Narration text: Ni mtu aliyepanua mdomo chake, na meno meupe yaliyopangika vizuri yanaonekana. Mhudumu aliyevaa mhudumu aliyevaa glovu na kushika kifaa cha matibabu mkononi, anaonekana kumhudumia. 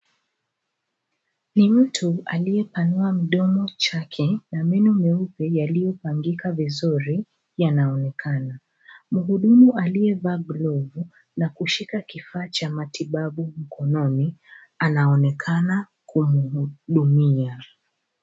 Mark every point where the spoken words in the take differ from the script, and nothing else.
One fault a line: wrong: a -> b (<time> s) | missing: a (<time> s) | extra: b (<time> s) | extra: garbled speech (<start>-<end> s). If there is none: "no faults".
missing: mhudumu aliyevaa (10.4 s)